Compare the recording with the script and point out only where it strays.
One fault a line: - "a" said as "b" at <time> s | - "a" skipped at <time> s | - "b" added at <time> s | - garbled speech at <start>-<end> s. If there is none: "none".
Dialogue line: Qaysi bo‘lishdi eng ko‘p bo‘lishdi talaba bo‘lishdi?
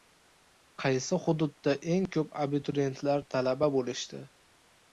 - "bo‘lishdi" said as "hududda" at 1.2 s
- "bo‘lishdi" said as "abituriyentlar" at 2.4 s